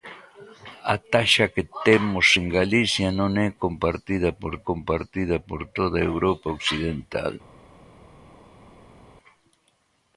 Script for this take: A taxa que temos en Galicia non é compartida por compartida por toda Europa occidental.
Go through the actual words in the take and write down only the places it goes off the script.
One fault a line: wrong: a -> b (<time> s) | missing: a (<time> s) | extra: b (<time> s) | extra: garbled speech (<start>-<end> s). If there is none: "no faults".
no faults